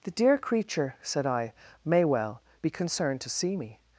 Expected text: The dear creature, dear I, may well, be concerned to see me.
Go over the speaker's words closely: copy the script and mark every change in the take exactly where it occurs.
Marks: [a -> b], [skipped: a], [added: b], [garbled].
The dear creature, [dear -> said] I, may well, be concerned to see me.